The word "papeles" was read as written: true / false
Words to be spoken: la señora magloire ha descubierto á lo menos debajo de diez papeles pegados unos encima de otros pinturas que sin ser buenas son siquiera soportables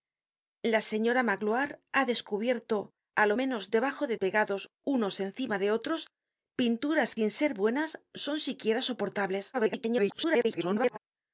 false